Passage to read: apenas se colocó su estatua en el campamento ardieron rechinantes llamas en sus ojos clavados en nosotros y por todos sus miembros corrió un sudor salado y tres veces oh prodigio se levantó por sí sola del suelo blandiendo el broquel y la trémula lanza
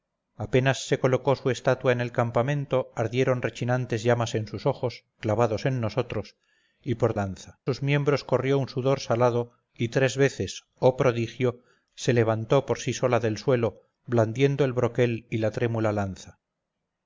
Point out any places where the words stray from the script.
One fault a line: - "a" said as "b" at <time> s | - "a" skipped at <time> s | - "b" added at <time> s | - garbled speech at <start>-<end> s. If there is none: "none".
- "todos" said as "lanza" at 7.1 s